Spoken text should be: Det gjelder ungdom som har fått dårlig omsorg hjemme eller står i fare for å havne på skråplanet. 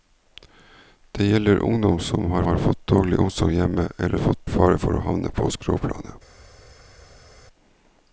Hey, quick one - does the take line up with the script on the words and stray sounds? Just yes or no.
no